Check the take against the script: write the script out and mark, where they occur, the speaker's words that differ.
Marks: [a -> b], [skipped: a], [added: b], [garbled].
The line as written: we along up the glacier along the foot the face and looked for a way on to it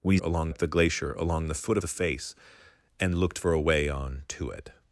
we along up the glacier along the foot the face and looked for a way on to it